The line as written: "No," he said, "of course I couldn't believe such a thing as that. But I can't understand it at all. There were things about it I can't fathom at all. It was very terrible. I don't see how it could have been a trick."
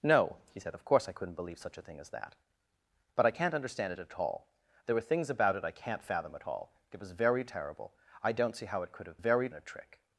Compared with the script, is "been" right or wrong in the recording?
wrong